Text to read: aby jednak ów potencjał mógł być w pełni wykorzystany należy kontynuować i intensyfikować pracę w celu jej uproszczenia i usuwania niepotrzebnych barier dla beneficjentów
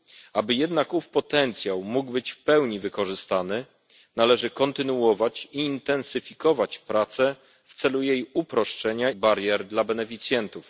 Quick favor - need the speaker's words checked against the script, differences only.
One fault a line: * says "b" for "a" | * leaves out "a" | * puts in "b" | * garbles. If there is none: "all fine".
* leaves out "i usuwania niepotrzebnych"